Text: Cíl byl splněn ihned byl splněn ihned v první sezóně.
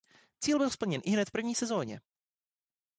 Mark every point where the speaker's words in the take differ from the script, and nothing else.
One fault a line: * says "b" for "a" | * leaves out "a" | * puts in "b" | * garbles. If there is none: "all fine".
* leaves out "byl splněn ihned"